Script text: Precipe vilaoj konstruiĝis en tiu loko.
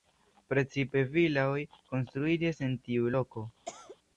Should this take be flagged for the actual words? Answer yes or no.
no